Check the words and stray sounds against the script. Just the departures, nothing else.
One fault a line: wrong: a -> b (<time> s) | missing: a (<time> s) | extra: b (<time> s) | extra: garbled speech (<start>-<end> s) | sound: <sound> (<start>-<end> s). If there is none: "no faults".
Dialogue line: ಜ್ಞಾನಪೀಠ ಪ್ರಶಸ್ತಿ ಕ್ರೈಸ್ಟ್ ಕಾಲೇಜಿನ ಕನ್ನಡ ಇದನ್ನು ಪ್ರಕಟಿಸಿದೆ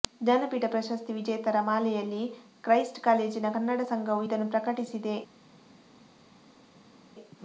extra: ವಿಜೇತರ ಮಾಲೆಯಲ್ಲಿ (1.1 s)
extra: ಸಂಘವು (3.9 s)